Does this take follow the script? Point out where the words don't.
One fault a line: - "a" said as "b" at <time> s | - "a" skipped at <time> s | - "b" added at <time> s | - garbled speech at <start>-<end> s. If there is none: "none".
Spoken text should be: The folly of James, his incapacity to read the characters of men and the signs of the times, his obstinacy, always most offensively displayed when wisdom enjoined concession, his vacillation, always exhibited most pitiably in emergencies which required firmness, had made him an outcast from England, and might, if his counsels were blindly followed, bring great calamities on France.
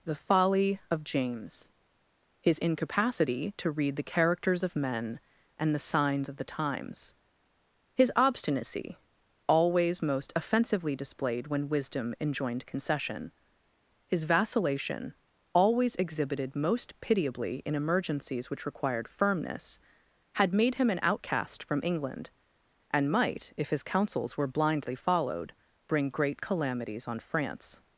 none